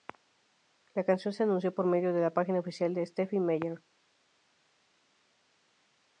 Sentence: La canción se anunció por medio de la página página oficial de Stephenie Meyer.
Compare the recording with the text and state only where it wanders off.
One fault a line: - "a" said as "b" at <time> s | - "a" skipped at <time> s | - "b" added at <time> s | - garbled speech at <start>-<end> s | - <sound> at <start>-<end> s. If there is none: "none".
- "página" skipped at 2.6 s